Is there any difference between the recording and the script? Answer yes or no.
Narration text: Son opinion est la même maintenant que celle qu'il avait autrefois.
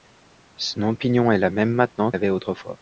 yes